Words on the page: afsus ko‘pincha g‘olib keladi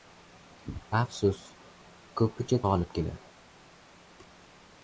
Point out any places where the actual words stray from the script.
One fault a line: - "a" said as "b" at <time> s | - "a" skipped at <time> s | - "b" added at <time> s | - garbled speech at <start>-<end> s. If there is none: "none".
none